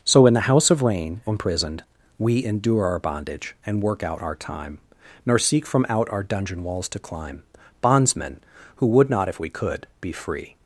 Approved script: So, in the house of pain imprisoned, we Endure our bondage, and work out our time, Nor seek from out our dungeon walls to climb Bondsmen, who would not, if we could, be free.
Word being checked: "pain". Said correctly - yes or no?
no